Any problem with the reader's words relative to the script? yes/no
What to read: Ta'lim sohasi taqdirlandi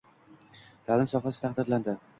no